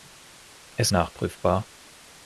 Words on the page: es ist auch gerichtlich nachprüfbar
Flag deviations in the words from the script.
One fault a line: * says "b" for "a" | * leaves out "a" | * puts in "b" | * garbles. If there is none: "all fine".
* leaves out "ist auch gerichtlich"